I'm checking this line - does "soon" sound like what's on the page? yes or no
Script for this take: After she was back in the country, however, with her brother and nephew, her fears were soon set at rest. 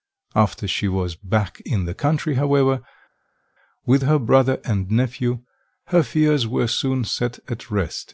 yes